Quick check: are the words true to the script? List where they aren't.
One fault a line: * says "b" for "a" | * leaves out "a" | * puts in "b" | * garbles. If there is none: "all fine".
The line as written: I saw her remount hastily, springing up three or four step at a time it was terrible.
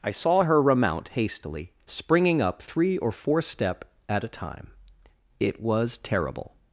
all fine